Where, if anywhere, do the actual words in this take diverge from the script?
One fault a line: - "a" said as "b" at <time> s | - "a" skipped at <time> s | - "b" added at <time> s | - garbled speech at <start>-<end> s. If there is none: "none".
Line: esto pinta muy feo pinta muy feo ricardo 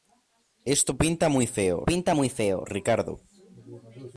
none